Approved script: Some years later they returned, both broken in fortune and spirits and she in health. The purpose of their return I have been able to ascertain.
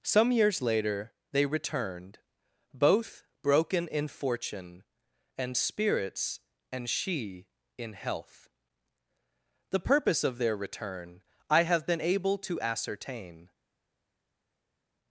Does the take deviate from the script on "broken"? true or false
false